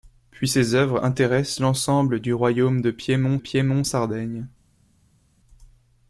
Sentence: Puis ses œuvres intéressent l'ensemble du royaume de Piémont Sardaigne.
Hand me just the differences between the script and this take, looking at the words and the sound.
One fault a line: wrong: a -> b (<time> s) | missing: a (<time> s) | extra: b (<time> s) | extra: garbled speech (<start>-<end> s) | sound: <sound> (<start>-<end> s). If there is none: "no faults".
extra: Piémont (3.4 s)